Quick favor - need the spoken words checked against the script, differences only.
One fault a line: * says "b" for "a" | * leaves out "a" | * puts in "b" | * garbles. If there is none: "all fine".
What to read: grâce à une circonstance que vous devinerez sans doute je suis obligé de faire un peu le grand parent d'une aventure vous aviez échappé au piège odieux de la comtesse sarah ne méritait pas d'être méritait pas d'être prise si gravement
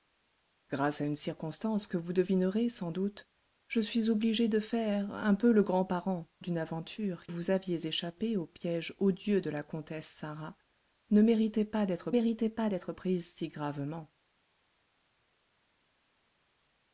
all fine